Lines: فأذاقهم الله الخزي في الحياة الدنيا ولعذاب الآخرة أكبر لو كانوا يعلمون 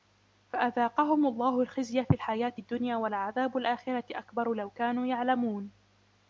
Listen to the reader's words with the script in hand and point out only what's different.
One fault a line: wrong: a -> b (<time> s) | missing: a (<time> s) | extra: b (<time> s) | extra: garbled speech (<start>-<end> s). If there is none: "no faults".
no faults